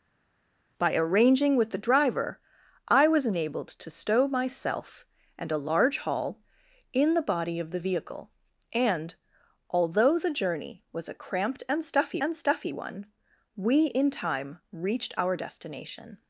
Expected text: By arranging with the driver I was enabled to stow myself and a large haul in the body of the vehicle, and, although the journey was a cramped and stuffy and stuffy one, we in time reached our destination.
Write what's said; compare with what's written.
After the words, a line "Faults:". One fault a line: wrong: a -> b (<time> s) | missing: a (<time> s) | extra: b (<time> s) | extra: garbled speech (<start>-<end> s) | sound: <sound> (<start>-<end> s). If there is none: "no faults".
By arranging with the driver I was enabled to stow myself and a large haul in the body of the vehicle, and, although the journey was a cramped and stuffy and stuffy one, we in time reached our destination.
Faults:
no faults